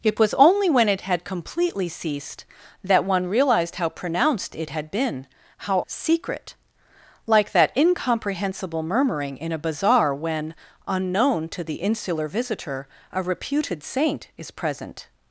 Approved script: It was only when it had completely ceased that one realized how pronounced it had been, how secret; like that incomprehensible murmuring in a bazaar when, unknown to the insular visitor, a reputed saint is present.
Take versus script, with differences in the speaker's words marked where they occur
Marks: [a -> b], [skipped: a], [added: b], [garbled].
It was only when it had completely ceased that one realized how pronounced it had been, how secret; like that incomprehensible murmuring in a bazaar when, unknown to the insular visitor, a reputed saint is present.